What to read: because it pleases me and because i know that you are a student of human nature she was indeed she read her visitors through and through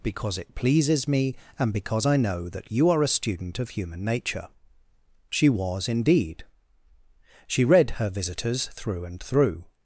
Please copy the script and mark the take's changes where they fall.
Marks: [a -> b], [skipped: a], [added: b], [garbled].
because it pleases me and because i know that you are a student of human nature she was indeed she read her visitors through and through